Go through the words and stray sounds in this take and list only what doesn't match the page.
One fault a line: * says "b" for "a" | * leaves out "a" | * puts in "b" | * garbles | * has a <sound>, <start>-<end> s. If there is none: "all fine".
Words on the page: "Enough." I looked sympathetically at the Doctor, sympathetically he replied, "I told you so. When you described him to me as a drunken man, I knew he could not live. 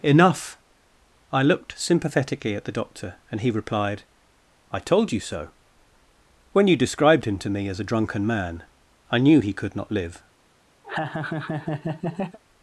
* says "and" for "sympathetically"
* has a laugh, 10.8-12.4 s